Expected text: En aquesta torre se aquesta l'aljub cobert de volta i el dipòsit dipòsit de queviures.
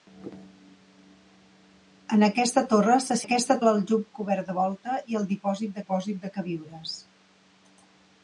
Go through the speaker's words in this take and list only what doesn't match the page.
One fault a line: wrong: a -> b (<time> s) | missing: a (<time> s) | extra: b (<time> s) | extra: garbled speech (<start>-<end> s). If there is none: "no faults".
no faults